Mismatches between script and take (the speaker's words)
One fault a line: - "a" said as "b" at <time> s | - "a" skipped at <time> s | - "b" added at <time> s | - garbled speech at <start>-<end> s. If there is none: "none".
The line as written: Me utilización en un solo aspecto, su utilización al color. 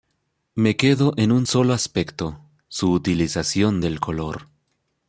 - "utilización" said as "quedo" at 0.8 s
- "al" said as "del" at 3.8 s